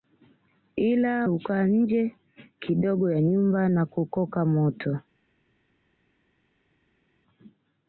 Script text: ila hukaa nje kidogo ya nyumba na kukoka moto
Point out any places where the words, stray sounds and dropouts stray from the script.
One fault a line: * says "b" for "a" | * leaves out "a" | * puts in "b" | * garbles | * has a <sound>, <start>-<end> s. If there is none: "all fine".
all fine